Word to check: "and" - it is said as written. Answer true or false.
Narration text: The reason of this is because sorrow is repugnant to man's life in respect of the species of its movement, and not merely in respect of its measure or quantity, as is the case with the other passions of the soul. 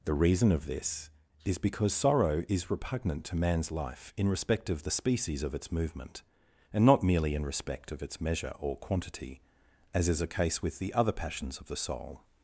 true